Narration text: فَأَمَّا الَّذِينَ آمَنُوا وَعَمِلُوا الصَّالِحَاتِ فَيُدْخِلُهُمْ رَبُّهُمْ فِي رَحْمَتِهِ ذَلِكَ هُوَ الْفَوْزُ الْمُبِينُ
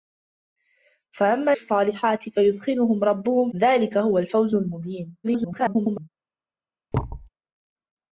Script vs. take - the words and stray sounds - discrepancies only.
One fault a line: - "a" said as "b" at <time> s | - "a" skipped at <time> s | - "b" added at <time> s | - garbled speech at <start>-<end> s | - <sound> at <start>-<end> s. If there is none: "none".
- "الَّذِينَ آمَنُوا وَعَمِلُوا" skipped at 1.5 s
- "فِي رَحْمَتِهِ" skipped at 3.5 s
- garbled speech at 5.2-6.1 s
- thud at 6.9-7.3 s